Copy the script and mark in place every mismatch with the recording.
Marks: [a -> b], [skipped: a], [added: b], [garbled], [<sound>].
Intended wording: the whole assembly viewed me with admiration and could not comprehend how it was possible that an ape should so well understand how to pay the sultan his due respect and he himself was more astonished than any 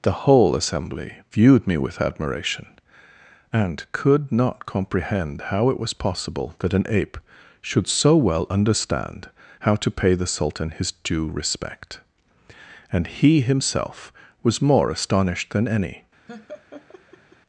the whole assembly viewed me with admiration and could not comprehend how it was possible that an ape should so well understand how to pay the sultan his due respect and he himself was more astonished than any [laugh]